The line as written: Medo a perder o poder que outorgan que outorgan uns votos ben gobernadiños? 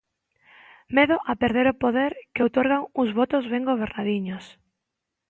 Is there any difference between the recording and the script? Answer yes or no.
yes